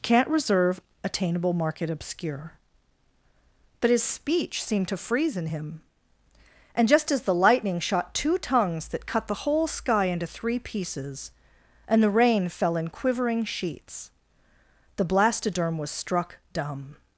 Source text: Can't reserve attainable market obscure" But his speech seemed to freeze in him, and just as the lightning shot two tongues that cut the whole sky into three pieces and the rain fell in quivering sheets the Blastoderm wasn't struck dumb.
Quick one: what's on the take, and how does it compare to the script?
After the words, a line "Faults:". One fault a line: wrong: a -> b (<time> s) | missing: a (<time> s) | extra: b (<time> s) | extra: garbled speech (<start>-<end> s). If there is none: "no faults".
Can't reserve attainable market obscure" But his speech seemed to freeze in him, and just as the lightning shot two tongues that cut the whole sky into three pieces and the rain fell in quivering sheets the Blastoderm was struck dumb.
Faults:
wrong: wasn't -> was (15.8 s)